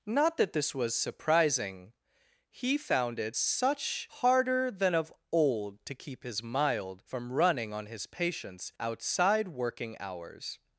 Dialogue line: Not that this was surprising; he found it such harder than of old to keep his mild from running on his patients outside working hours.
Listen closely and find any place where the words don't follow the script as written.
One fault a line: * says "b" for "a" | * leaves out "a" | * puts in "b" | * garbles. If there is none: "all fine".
all fine